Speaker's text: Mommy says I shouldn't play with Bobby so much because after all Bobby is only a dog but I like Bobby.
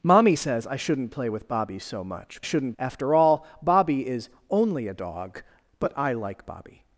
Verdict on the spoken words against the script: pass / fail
fail